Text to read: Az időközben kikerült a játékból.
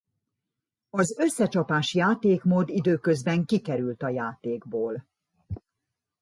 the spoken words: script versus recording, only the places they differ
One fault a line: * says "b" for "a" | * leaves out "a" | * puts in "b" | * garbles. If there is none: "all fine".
* puts in "összecsapás játékmód"